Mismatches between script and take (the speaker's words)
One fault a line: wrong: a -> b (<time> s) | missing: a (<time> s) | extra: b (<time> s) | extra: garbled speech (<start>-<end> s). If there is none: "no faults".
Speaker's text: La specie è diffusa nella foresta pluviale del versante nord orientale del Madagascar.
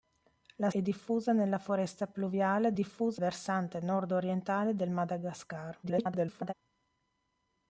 missing: specie (0.7 s)
wrong: del -> diffusa (2.7 s)
extra: garbled speech (5.8-6.5 s)